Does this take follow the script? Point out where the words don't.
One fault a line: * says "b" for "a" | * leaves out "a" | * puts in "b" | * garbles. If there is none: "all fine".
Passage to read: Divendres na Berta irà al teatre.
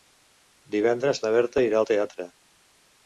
all fine